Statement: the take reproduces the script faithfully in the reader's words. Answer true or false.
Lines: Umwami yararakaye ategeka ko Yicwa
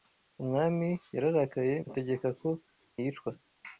true